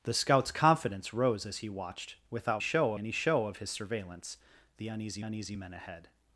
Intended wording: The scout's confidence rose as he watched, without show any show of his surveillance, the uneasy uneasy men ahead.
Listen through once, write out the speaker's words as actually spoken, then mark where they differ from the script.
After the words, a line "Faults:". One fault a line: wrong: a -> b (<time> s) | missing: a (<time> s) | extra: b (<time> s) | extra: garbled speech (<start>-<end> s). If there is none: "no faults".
The scout's confidence rose as he watched, without show any show of his surveillance, the uneasy uneasy men ahead.
Faults:
no faults